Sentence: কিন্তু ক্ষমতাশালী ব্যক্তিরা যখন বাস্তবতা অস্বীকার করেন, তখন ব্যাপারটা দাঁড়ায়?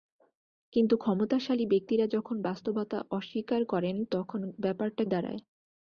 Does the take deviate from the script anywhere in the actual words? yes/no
no